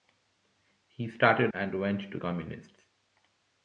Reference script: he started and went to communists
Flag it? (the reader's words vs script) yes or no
no